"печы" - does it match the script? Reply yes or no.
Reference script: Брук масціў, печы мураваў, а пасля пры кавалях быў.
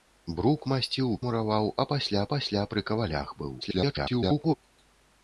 no